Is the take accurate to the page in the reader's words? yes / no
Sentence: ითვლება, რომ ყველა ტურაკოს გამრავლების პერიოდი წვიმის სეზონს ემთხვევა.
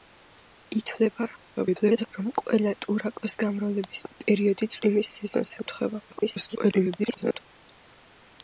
no